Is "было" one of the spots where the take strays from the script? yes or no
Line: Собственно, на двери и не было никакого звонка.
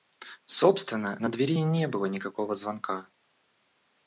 no